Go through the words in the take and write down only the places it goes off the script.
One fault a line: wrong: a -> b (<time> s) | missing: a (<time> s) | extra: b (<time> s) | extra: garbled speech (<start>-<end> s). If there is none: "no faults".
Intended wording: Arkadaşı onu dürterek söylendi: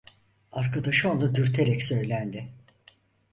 no faults